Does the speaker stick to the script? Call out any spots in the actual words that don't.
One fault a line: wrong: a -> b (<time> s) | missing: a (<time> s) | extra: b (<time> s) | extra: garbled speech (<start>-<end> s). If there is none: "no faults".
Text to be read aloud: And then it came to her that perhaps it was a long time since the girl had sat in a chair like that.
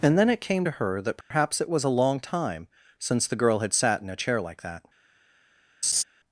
no faults